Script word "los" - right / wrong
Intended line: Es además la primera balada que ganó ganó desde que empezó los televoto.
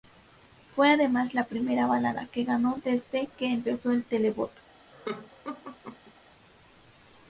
wrong